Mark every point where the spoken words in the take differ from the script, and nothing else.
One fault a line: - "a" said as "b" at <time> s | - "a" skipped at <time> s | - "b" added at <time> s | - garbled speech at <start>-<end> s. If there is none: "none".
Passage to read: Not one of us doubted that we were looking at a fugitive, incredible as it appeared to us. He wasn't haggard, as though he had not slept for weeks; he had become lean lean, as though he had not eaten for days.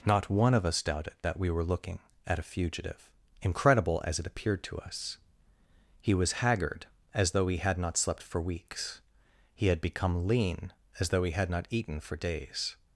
- "wasn't" said as "was" at 6.1 s
- "lean" skipped at 10.7 s